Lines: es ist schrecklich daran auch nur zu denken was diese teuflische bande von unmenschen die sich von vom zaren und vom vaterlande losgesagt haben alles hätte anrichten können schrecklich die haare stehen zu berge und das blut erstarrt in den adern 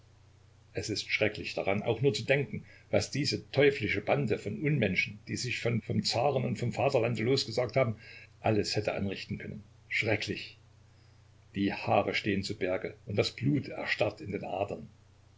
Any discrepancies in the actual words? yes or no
no